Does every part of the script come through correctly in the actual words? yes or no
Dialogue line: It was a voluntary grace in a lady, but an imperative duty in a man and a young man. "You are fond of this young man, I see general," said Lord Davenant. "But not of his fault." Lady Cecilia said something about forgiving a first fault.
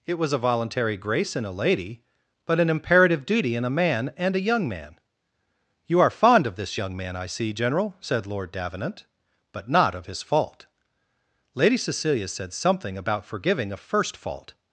yes